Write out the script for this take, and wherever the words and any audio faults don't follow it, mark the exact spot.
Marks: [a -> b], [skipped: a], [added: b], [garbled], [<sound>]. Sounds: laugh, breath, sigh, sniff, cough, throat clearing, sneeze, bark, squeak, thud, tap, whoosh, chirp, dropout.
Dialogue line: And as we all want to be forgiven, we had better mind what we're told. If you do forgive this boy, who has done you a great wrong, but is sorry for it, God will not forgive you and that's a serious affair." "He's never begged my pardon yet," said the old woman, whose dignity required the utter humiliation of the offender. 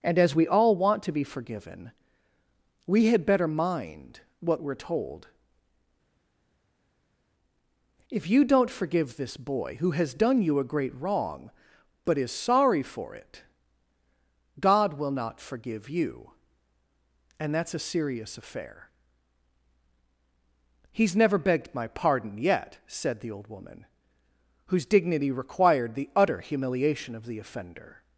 And as we all want to be forgiven, we had better mind what we're told. If you [do -> don't] forgive this boy, who has done you a great wrong, but is sorry for it, God will not forgive you and that's a serious affair." "He's never begged my pardon yet," said the old woman, whose dignity required the utter humiliation of the offender.